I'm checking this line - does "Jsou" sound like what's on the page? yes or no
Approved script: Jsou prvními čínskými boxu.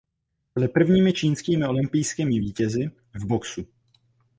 no